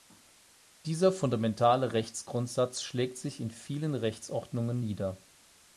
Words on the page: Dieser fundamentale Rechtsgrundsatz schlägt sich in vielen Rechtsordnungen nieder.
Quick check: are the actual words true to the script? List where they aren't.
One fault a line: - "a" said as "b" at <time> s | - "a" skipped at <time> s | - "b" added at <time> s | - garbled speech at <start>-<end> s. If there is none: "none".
none